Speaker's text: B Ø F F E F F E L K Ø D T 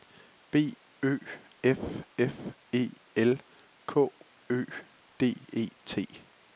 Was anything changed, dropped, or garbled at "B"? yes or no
no